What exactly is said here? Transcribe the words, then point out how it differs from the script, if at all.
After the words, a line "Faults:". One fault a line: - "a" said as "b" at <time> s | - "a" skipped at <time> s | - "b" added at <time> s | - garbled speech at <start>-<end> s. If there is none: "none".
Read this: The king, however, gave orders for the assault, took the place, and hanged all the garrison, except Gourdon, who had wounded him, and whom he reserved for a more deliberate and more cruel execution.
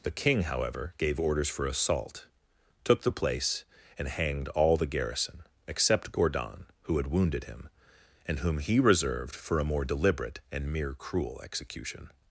The king, however, gave orders for assault, took the place, and hanged all the garrison, except Gourdon, who had wounded him, and whom he reserved for a more deliberate and mere cruel execution.
Faults:
- "the" skipped at 1.6 s
- "more" said as "mere" at 10.7 s